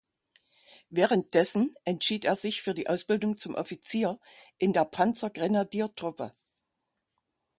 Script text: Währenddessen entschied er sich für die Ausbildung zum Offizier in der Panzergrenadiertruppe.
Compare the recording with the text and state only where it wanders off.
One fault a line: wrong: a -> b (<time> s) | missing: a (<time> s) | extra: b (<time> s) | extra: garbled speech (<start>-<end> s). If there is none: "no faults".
no faults